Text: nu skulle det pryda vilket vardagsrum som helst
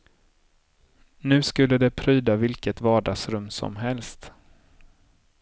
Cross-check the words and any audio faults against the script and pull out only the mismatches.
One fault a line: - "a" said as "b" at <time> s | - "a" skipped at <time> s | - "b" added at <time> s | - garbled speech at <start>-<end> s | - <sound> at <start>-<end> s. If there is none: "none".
none